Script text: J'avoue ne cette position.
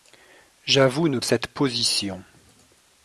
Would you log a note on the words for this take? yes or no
no